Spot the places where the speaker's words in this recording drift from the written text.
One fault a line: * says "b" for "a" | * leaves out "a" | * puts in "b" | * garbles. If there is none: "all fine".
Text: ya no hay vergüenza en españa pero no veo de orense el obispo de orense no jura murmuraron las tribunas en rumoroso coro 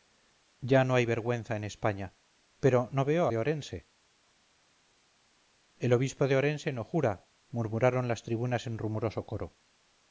all fine